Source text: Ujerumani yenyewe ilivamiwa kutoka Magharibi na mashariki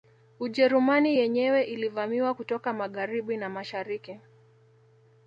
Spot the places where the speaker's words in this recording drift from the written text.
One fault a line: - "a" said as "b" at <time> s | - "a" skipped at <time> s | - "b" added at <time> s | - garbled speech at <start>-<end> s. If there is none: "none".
none